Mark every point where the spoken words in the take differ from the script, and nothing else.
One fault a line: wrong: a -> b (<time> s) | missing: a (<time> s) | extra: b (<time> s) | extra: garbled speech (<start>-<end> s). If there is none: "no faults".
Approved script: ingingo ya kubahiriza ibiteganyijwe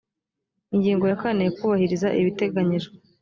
extra: kane (1.2 s)